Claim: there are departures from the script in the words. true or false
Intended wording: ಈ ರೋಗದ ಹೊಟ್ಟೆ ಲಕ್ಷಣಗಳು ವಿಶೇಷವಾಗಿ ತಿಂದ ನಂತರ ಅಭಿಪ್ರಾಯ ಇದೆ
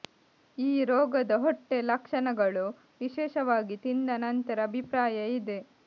false